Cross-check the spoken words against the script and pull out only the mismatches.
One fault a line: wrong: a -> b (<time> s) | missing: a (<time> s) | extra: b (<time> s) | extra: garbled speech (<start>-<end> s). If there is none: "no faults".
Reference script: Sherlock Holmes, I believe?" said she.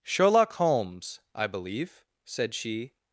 no faults